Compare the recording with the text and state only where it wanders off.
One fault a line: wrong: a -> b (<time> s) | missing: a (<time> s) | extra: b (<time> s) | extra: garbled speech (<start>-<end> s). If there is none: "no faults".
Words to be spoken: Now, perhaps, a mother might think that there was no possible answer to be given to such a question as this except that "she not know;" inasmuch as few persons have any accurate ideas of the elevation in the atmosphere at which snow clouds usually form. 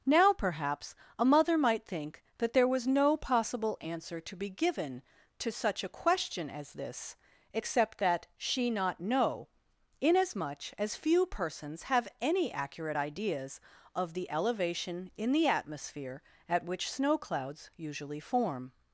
no faults